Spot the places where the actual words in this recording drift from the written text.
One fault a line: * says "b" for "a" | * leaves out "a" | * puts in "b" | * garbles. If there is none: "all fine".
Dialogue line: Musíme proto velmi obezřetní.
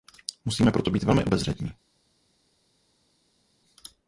* puts in "být"